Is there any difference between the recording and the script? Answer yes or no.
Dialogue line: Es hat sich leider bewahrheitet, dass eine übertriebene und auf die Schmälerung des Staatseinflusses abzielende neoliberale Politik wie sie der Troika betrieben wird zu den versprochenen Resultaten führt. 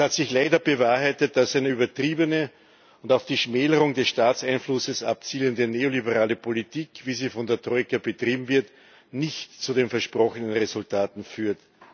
yes